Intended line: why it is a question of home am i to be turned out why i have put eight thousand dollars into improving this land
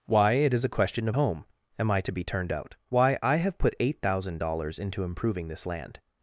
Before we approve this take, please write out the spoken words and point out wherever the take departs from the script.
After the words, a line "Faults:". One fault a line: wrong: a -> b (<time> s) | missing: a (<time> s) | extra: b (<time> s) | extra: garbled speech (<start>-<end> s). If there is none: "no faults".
why it is a question of home am i to be turned out why i have put eight thousand dollars into improving this land
Faults:
no faults